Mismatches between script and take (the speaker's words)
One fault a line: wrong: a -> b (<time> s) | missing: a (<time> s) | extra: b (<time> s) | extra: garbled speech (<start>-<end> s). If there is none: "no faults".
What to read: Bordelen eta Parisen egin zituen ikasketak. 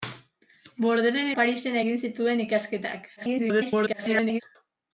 missing: eta (1.3 s)
extra: garbled speech (3.2-4.4 s)